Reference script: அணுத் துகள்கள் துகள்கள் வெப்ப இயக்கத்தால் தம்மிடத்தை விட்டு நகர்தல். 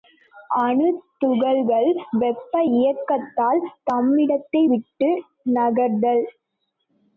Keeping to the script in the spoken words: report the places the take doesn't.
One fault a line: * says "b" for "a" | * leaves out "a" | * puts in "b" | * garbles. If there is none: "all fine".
* leaves out "துகள்கள்"